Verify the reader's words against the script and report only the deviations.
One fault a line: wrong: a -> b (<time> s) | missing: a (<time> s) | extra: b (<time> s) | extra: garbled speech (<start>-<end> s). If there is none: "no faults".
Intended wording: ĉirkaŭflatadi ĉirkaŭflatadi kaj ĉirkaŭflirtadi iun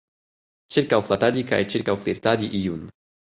missing: ĉirkaŭflatadi (1.4 s)